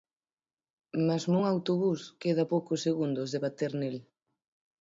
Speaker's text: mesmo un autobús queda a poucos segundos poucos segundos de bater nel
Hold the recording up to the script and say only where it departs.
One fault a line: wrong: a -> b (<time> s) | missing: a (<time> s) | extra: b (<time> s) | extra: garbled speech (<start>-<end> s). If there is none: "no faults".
missing: poucos segundos (3.3 s)